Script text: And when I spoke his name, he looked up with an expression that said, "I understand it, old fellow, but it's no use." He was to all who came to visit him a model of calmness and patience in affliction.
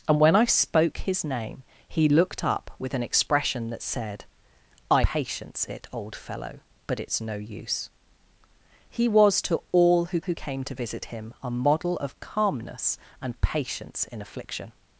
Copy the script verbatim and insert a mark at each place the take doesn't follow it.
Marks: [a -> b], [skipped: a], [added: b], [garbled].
And when I spoke his name, he looked up with an expression that said, "I [understand -> patience] it, old fellow, but it's no use." He was to all who [added: who] came to visit him a model of calmness and patience in affliction.